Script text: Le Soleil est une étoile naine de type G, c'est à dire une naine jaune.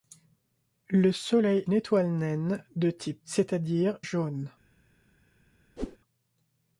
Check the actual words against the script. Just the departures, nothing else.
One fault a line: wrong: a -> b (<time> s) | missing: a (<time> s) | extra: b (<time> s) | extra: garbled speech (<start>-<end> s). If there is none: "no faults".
missing: est (1.7 s)
missing: G (3.2 s)
missing: une naine (4.0 s)